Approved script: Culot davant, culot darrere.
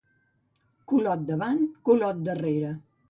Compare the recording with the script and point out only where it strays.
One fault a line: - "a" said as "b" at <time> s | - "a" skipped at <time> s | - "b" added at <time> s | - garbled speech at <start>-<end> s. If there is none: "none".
none